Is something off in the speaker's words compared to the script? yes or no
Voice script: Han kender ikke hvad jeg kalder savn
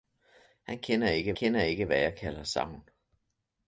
yes